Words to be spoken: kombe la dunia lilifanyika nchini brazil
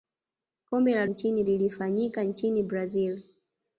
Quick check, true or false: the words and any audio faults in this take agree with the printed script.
false